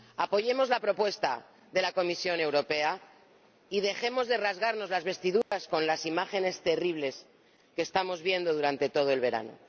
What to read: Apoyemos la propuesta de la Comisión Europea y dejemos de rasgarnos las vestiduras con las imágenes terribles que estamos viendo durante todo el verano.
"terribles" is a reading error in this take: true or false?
false